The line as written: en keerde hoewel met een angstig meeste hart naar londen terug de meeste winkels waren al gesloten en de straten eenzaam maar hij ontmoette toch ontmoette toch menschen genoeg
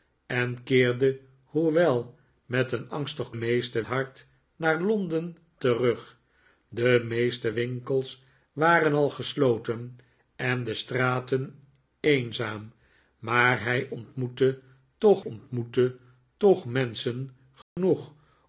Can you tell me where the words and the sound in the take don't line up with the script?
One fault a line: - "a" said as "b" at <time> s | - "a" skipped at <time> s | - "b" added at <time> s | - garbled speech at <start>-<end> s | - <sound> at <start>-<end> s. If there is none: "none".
- dropout at 17.6-17.8 s